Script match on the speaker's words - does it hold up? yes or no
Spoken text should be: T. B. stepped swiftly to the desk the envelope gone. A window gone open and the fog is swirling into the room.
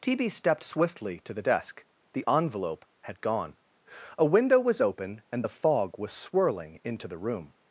no